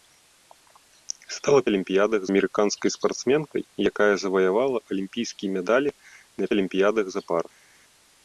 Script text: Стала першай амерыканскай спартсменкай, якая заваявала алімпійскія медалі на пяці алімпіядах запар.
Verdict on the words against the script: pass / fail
fail